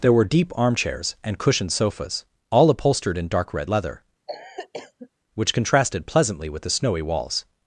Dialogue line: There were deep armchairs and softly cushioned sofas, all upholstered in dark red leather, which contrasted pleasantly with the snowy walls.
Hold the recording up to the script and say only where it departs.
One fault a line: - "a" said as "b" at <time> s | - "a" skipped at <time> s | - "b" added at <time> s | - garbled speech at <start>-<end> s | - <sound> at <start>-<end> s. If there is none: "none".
- "softly" skipped at 1.4 s
- cough at 4.3-5.1 s